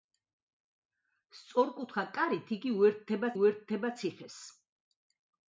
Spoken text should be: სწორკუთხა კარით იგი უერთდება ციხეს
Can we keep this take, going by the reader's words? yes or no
no